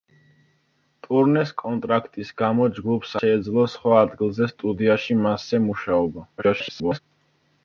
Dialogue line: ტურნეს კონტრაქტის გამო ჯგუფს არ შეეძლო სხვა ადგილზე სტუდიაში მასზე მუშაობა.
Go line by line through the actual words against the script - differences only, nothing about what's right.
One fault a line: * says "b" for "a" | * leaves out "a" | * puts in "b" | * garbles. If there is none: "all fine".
* leaves out "არ"
* garbles